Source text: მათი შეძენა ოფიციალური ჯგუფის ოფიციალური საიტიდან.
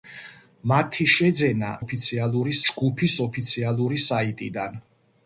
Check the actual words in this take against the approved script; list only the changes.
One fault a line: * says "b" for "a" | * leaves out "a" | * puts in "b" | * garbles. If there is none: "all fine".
all fine